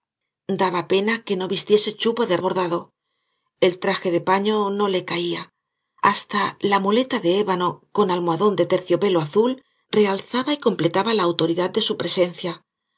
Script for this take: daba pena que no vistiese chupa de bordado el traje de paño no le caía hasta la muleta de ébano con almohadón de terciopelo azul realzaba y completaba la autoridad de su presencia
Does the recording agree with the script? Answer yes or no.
yes